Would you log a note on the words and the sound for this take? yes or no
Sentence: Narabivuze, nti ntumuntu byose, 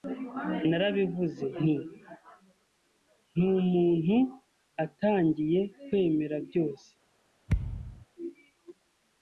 yes